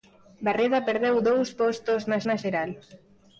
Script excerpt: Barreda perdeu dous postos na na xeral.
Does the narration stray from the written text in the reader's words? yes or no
no